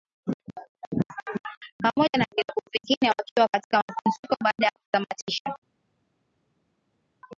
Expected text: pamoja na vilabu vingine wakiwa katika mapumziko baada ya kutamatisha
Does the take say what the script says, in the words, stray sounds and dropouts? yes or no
yes